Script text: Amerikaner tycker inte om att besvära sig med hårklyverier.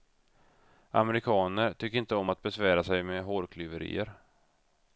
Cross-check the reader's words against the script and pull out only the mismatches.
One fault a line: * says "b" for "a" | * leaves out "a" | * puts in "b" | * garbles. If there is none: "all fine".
all fine